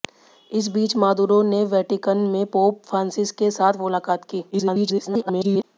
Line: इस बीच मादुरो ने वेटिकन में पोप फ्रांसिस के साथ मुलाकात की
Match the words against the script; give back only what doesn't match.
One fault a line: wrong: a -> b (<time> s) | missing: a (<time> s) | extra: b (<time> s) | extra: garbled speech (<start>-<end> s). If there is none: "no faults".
extra: garbled speech (4.5-5.6 s)